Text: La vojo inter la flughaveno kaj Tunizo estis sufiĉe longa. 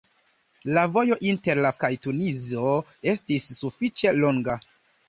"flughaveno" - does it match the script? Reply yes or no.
no